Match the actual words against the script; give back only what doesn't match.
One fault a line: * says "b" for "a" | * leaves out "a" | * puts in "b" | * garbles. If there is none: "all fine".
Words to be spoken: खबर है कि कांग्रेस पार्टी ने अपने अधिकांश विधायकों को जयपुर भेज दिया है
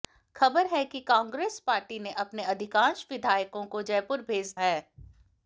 * leaves out "दिया"